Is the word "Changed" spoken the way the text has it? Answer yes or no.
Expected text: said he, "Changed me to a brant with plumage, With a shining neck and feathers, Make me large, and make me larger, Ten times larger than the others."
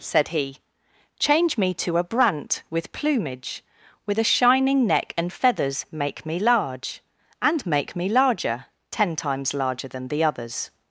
no